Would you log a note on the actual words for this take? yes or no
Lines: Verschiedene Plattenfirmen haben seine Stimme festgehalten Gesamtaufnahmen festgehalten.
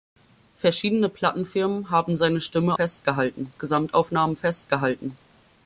no